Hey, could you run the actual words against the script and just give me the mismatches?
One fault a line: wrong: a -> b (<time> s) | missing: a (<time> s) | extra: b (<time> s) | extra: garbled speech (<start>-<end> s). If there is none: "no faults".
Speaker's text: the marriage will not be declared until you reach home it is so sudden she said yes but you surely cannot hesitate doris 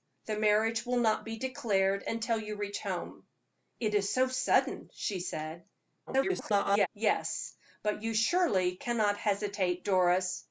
extra: garbled speech (6.1-6.9 s)